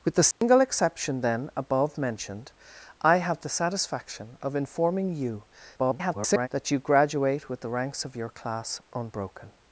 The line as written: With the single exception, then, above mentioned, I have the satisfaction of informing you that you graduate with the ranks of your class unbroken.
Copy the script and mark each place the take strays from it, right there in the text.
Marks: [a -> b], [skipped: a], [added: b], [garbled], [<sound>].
With the single [dropout] exception, then, above mentioned, I have the satisfaction of informing you [garbled] that you graduate with the ranks of your class unbroken.